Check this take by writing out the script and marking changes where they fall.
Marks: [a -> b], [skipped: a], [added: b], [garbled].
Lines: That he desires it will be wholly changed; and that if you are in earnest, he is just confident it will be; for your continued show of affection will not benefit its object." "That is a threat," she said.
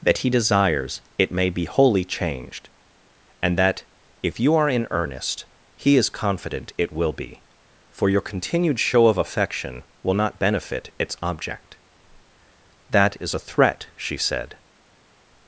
That he desires it [will -> may] be wholly changed; and that if you are in earnest, he is [skipped: just] confident it will be; for your continued show of affection will not benefit its object." "That is a threat," she said.